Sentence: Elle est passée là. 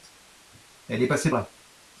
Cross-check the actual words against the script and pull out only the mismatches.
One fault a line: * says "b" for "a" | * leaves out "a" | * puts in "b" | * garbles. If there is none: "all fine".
all fine